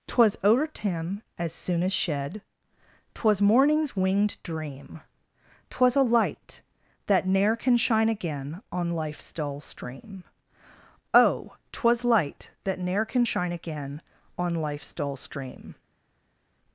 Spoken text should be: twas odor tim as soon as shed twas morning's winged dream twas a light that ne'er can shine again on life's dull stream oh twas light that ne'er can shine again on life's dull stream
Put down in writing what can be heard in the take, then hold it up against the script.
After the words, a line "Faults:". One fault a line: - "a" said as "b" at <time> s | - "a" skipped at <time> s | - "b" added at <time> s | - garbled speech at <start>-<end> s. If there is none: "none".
twas odor tim as soon as shed twas morning's winged dream twas a light that ne'er can shine again on life's dull stream oh twas light that ne'er can shine again on life's dull stream
Faults:
none